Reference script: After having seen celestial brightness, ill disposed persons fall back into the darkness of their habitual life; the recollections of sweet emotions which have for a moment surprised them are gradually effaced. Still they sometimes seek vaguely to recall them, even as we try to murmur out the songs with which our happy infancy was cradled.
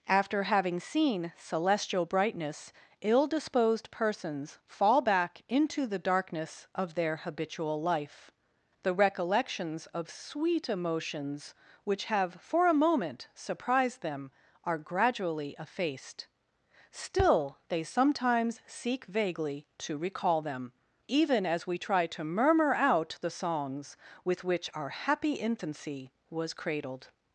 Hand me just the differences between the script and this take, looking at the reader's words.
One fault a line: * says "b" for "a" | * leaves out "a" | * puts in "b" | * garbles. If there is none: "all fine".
all fine